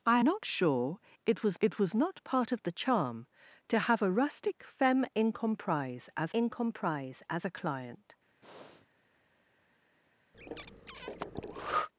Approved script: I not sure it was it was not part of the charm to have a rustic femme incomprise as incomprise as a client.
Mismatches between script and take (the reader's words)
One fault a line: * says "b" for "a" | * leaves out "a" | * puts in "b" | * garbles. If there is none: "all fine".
all fine